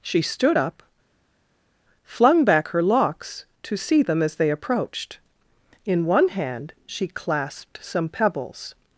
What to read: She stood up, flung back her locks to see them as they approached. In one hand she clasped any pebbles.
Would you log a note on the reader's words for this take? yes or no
yes